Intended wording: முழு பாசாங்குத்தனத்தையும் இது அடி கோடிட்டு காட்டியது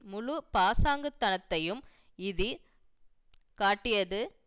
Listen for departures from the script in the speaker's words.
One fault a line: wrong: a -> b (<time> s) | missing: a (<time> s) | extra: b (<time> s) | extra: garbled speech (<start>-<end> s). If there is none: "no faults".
missing: அடி கோடிட்டு (2.5 s)